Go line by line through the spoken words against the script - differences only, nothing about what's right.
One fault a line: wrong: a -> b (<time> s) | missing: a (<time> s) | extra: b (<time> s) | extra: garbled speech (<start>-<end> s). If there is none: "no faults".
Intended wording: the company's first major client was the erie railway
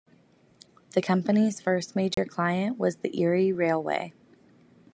no faults